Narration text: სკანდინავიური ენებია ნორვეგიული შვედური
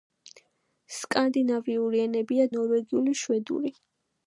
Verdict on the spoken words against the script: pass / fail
pass